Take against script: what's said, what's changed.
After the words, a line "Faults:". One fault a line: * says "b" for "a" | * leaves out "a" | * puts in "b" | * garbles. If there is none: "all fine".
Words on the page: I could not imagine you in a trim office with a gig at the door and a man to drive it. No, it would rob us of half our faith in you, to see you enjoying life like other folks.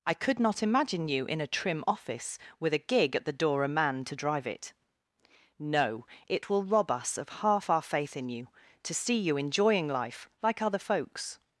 I could not imagine you in a trim office with a gig at the door a man to drive it. No, it will rob us of half our faith in you, to see you enjoying life like other folks.
Faults:
* leaves out "and"
* says "will" for "would"